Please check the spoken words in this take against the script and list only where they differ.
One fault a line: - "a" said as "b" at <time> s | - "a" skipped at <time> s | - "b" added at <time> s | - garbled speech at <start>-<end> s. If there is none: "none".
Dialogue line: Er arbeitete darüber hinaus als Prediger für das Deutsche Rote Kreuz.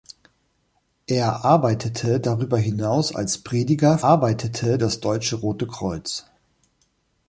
- "für" said as "arbeitete" at 4.0 s